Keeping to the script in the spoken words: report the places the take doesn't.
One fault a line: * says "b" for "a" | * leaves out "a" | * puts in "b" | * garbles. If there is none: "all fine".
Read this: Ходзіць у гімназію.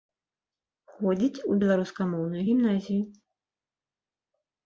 * puts in "беларускамоўную"